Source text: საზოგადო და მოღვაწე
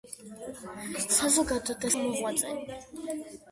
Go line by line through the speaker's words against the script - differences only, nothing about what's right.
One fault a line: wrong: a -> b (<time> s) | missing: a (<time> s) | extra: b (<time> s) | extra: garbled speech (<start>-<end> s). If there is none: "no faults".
no faults